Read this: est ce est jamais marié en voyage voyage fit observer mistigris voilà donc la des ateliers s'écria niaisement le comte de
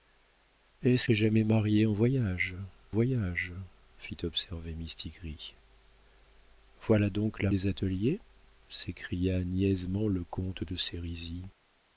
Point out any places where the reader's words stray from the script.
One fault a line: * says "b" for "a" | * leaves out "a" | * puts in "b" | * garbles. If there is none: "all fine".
all fine